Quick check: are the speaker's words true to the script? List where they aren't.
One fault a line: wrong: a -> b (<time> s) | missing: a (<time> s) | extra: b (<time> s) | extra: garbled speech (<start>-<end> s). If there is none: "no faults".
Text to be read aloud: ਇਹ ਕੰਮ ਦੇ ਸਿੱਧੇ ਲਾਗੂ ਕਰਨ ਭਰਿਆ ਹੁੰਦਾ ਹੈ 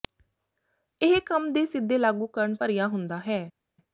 no faults